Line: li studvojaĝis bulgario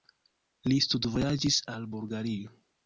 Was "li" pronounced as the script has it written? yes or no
yes